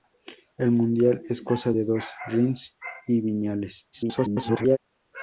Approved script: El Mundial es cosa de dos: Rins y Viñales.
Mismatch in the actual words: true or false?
true